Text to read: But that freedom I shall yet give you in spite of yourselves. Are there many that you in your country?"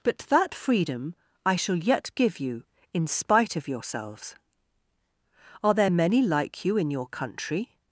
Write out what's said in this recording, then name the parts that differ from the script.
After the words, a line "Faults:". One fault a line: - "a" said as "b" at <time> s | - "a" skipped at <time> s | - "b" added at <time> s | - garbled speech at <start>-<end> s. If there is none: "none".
But that freedom I shall yet give you in spite of yourselves. Are there many like you in your country?"
Faults:
- "that" said as "like" at 6.2 s